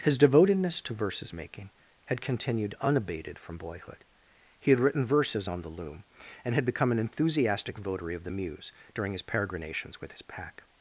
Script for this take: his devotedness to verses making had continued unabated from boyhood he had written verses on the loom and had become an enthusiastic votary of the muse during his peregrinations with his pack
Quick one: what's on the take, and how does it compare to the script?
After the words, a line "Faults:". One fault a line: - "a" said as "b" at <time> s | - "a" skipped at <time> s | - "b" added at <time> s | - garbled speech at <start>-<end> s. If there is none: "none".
his devotedness to verses making had continued unabated from boyhood he had written verses on the loom and had become an enthusiastic votary of the muse during his peregrinations with his pack
Faults:
none